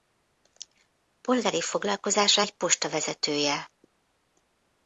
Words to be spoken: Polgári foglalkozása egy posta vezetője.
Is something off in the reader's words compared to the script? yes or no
no